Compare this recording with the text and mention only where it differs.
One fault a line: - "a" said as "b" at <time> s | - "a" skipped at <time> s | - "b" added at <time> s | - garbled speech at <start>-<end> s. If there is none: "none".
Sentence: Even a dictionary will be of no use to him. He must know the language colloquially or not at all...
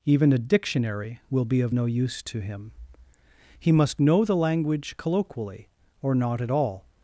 none